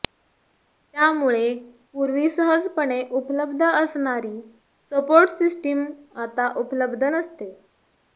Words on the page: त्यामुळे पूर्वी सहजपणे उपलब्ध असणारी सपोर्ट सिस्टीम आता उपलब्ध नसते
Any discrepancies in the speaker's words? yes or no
no